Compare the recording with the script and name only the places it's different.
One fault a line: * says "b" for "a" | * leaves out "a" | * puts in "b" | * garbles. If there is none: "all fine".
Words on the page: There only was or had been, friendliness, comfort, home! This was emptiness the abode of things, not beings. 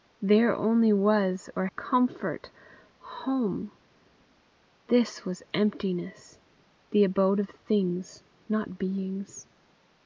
* leaves out "had been friendliness"